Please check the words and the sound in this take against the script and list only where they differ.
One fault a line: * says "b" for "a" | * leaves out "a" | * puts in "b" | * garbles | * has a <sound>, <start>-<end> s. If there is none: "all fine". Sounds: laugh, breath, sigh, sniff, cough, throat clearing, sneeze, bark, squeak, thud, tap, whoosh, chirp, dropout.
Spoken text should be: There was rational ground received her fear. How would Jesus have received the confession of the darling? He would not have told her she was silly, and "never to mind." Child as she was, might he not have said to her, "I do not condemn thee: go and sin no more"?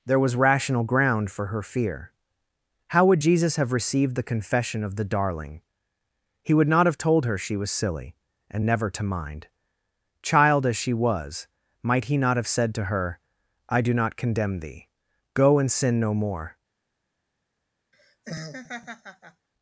* says "for" for "received"
* has a laugh, 17.9-19.5 s